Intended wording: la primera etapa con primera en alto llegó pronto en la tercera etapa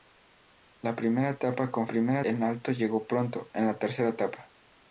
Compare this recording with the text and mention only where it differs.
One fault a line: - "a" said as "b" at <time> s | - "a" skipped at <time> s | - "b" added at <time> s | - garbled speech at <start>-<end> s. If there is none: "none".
none